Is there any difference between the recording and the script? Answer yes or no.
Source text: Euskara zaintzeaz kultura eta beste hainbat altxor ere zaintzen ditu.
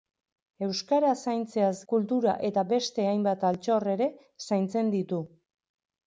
no